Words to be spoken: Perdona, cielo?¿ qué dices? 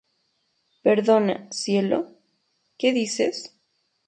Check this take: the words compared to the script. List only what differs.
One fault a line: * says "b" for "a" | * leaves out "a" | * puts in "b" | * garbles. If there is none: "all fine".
all fine